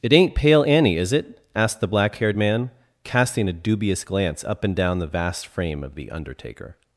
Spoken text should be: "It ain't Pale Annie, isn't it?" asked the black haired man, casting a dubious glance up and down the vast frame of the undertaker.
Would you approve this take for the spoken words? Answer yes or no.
no